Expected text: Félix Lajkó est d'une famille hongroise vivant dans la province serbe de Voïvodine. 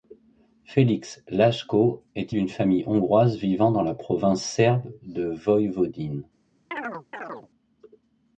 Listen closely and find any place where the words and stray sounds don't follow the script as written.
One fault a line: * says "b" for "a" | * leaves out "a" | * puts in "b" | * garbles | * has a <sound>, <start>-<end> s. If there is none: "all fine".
* has a chirp, 6.7-7.5 s